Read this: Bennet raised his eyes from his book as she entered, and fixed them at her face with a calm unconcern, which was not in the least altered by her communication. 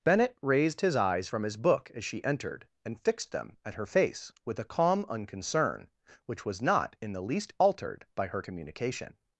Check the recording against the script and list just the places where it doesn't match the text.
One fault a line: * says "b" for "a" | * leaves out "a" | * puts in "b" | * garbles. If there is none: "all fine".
all fine